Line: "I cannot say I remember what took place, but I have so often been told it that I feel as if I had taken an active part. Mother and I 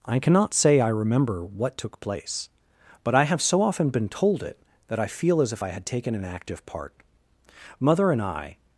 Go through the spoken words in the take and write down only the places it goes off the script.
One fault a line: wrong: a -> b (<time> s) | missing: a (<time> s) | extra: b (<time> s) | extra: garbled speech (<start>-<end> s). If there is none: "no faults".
no faults